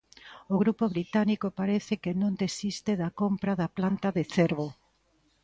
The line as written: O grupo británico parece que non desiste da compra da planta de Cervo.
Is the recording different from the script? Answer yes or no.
no